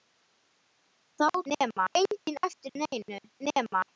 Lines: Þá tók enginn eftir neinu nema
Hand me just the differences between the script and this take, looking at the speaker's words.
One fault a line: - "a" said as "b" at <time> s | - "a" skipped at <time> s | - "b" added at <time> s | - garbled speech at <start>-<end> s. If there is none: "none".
- "tók" said as "nema" at 1.5 s